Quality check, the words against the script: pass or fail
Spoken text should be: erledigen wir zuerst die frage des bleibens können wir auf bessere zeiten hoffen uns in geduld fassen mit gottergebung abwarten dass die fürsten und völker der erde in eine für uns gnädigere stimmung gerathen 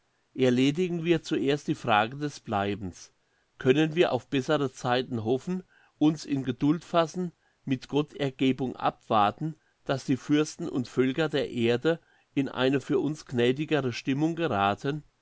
pass